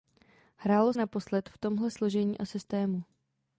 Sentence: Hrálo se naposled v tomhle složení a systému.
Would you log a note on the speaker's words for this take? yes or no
yes